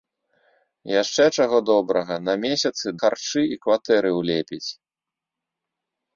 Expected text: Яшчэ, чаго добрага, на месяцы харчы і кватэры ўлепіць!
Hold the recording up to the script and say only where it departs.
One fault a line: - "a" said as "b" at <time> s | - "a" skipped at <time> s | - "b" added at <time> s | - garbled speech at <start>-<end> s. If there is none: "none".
none